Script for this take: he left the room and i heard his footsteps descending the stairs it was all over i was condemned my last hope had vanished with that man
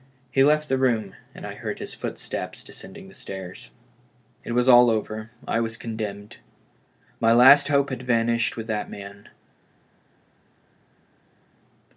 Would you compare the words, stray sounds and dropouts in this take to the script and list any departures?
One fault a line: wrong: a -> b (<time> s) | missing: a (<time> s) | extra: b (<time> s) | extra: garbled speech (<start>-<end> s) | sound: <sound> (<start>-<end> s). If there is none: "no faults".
no faults